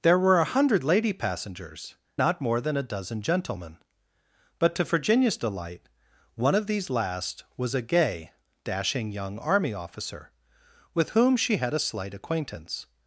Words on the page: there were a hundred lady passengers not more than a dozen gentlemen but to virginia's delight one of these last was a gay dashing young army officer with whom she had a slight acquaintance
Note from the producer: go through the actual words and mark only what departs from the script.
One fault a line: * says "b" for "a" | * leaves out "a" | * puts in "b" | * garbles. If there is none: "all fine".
all fine